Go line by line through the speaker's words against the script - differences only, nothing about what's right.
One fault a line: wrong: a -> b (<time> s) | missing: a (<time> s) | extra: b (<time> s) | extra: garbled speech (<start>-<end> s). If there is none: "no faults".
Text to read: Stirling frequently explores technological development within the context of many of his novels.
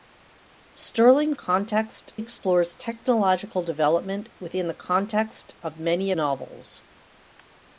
wrong: frequently -> context (1.3 s)
missing: of his (6.1 s)